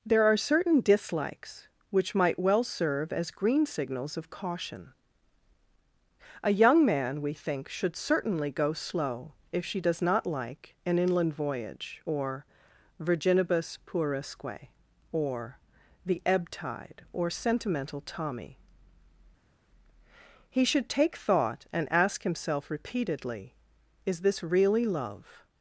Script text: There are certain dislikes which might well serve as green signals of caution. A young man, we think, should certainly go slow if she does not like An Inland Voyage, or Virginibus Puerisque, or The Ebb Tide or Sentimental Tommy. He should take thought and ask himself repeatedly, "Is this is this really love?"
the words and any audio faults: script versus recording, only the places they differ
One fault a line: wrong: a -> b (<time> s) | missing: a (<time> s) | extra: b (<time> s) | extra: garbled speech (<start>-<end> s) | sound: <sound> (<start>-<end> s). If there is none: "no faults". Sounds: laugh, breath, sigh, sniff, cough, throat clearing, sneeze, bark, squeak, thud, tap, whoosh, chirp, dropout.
missing: is this (24.4 s)